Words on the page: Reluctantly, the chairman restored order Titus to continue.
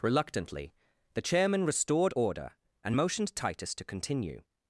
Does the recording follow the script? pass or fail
fail